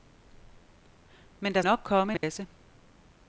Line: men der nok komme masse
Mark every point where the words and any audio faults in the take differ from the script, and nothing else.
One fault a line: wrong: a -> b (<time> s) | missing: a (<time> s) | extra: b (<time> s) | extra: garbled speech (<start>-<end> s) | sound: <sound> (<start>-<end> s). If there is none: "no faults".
sound: dropout (2.2-2.2 s)